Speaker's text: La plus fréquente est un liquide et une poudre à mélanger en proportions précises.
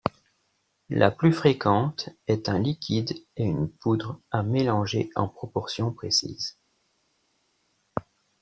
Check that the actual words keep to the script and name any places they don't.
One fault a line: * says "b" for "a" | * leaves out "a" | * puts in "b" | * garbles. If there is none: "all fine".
all fine